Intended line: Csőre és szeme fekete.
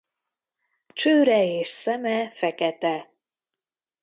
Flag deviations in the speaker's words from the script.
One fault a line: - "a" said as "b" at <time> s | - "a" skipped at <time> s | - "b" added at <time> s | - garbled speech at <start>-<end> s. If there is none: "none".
none